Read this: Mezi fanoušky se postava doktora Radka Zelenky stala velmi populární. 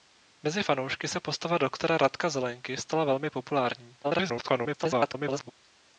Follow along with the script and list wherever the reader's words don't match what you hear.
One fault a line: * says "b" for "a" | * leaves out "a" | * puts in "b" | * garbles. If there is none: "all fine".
* garbles